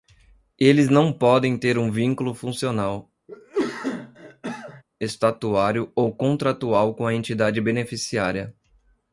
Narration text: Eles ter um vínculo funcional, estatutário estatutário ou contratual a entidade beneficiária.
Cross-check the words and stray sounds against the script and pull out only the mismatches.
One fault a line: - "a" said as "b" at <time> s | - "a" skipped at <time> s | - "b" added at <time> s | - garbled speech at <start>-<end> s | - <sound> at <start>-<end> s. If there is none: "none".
- "não podem" added at 0.9 s
- cough at 3.3-4.8 s
- "estatutário" skipped at 5.9 s
- "com" added at 6.9 s